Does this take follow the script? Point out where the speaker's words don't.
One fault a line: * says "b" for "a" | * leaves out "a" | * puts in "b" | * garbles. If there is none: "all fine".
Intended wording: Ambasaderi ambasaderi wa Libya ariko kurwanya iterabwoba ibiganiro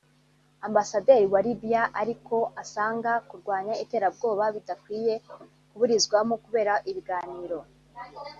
* leaves out "ambasaderi"
* puts in "asanga"
* puts in "bidakwiye kuburizwamo kubera"